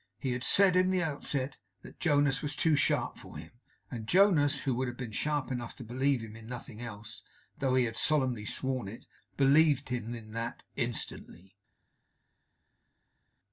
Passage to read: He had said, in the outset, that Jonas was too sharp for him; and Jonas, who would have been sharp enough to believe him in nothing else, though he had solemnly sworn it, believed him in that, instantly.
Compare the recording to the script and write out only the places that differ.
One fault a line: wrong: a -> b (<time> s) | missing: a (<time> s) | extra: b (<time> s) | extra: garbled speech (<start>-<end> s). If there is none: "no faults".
no faults